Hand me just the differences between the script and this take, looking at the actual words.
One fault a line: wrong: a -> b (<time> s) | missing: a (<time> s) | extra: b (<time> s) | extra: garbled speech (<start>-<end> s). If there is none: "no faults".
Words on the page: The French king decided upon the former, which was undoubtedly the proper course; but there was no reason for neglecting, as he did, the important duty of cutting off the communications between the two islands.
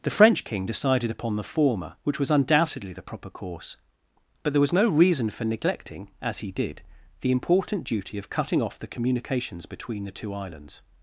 no faults